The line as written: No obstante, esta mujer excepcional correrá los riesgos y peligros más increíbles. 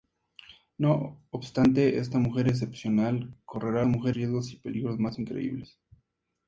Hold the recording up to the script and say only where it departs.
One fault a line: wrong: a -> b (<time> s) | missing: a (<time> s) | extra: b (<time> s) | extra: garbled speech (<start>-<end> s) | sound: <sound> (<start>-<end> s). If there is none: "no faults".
wrong: los -> mujer (3.9 s)